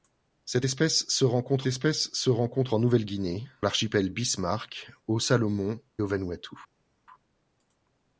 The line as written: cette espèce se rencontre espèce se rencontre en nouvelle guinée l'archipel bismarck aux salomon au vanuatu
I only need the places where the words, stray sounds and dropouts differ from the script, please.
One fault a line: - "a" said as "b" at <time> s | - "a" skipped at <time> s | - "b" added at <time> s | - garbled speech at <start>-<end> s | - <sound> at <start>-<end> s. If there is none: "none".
none